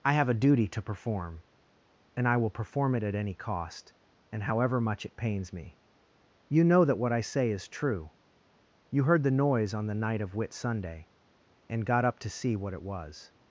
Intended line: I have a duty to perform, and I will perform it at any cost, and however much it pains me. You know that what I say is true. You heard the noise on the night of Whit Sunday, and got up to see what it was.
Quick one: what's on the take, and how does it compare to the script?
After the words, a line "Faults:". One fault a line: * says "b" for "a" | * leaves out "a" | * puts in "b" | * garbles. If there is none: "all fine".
I have a duty to perform, and I will perform it at any cost, and however much it pains me. You know that what I say is true. You heard the noise on the night of Whit Sunday, and got up to see what it was.
Faults:
all fine